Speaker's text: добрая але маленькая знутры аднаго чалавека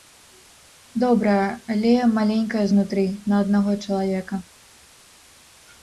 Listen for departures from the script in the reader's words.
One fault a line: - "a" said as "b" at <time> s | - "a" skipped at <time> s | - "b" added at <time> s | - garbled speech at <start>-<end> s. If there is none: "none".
- "на" added at 3.3 s